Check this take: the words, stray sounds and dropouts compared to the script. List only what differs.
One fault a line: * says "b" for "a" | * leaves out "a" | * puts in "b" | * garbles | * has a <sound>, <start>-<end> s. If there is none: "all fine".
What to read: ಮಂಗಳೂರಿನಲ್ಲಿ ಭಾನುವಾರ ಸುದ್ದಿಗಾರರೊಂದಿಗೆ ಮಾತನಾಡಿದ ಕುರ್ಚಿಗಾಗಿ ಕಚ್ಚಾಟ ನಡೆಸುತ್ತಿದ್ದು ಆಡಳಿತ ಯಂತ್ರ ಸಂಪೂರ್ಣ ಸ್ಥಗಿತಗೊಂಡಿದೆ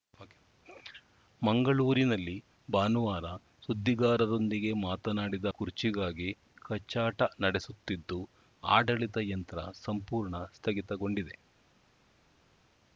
all fine